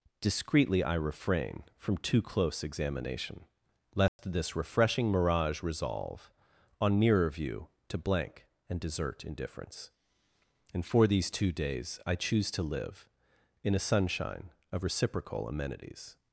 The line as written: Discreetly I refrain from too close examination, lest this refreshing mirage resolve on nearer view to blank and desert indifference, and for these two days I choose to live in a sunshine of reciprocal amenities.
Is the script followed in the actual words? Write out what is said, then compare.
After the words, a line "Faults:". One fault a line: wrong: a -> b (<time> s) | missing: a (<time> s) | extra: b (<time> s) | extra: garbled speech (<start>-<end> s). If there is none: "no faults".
Discreetly I refrain from too close examination, lest this refreshing mirage resolve on nearer view to blank and desert indifference, and for these two days I choose to live in a sunshine of reciprocal amenities.
Faults:
no faults